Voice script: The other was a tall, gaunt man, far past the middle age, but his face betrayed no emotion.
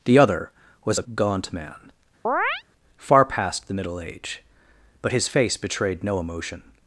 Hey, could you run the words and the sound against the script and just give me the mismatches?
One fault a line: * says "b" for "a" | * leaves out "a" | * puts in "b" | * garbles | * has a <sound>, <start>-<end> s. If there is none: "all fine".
* leaves out "tall"
* has a chirp, 2.2-2.6 s